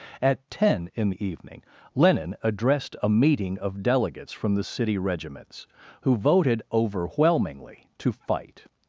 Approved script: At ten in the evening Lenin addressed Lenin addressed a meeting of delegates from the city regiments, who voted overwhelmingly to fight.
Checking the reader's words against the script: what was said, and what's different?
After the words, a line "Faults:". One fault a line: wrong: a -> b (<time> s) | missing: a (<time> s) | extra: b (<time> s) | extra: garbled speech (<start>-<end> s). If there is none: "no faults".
At ten in the evening Lenin addressed a meeting of delegates from the city regiments, who voted overwhelmingly to fight.
Faults:
missing: Lenin addressed (3.0 s)